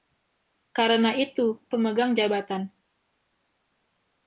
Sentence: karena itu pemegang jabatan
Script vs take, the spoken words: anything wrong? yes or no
no